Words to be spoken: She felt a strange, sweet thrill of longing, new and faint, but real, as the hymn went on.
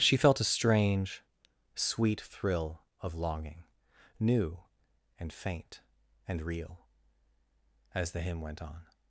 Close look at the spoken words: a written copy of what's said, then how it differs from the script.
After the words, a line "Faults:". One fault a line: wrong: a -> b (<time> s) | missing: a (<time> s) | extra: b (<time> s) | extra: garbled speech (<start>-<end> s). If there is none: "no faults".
She felt a strange, sweet thrill of longing, new and faint, and real, as the hymn went on.
Faults:
wrong: but -> and (6.3 s)